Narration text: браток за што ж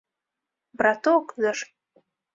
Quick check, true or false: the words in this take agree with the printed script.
false